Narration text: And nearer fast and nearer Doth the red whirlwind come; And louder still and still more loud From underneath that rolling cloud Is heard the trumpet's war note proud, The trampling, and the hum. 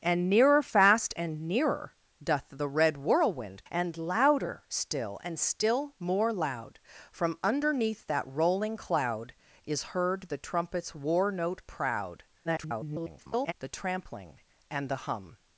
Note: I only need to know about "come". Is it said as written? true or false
false